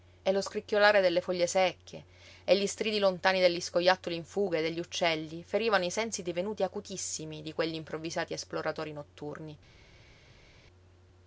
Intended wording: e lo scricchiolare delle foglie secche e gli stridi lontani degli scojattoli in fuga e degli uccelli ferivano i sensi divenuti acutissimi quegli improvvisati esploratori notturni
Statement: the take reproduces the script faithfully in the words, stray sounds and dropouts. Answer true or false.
false